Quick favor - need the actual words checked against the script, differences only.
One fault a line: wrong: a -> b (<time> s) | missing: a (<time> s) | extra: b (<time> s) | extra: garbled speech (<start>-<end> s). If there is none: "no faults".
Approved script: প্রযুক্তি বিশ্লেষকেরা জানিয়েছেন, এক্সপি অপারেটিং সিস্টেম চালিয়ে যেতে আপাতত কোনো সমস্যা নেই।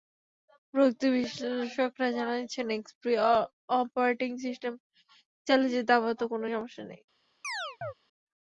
no faults